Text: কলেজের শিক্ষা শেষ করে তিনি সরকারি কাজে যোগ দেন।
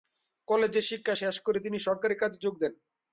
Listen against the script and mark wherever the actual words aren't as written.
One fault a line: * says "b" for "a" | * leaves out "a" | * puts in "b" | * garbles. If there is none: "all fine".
all fine